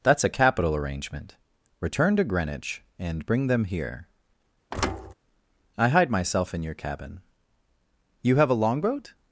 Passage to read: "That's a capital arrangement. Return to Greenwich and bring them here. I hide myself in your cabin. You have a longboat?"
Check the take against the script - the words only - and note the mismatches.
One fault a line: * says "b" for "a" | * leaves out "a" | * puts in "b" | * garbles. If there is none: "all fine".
all fine